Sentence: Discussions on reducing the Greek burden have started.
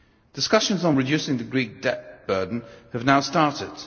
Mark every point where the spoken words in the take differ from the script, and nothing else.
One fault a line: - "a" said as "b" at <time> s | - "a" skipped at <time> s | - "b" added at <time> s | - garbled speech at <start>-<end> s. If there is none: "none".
- "debt" added at 1.8 s
- "now" added at 3.1 s